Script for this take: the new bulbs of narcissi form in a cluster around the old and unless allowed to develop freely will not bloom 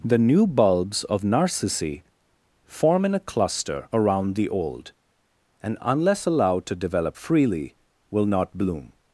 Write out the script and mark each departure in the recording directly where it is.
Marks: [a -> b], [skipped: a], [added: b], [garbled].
the new bulbs of narcissi form in a cluster around the old and unless allowed to develop freely will not bloom